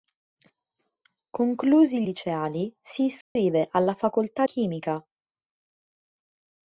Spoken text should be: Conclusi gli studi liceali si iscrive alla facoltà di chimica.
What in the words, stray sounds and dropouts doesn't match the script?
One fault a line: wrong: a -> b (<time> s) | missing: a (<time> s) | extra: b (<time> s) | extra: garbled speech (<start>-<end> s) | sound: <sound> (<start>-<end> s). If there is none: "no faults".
missing: gli studi (2.0 s)
sound: dropout (3.2-3.4 s)
missing: di (4.5 s)